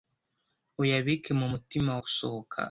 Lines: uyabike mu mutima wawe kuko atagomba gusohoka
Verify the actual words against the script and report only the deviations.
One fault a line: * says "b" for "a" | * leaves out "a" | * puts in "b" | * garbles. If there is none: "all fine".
* leaves out "wawe kuko atagomba"